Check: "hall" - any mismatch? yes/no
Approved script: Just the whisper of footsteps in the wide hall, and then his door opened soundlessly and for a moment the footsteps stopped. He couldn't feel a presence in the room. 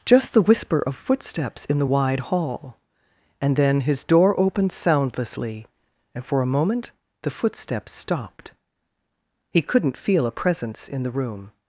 no